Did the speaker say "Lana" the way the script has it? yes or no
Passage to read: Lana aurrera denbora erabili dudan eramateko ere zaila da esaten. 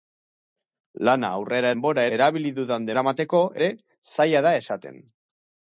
yes